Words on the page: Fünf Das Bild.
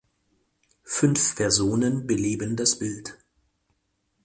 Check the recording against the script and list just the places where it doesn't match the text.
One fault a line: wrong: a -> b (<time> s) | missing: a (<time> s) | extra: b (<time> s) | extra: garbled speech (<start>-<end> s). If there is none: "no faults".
extra: Personen beleben (1.4 s)